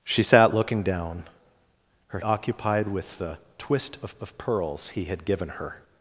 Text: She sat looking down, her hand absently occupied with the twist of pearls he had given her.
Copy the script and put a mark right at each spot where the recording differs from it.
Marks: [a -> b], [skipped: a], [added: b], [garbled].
She sat looking down, her [skipped: hand absently] occupied with the twist of [added: of] pearls he had given her.